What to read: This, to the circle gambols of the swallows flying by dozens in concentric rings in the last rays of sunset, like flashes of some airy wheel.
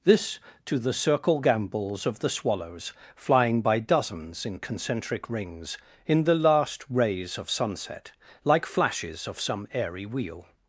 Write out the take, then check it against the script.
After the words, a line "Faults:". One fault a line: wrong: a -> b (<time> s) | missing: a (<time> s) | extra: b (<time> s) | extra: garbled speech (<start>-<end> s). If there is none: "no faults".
This, to the circle gambols of the swallows flying by dozens in concentric rings in the last rays of sunset, like flashes of some airy wheel.
Faults:
no faults